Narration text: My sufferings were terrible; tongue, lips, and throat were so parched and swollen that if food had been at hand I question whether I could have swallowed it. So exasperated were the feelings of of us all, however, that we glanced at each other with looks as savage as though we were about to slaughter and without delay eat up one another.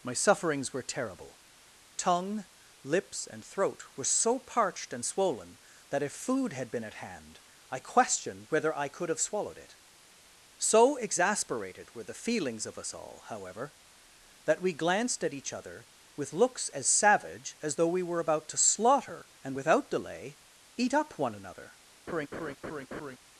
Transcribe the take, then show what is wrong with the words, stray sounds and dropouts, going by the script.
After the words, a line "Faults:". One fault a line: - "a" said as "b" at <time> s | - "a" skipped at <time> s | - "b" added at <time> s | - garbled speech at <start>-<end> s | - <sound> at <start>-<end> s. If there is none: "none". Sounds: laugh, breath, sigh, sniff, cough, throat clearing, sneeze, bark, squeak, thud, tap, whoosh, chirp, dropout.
My sufferings were terrible; tongue, lips, and throat were so parched and swollen that if food had been at hand I question whether I could have swallowed it. So exasperated were the feelings of us all, however, that we glanced at each other with looks as savage as though we were about to slaughter and without delay eat up one another.
Faults:
- "of" skipped at 12.8 s
- laugh at 22.1-23.2 s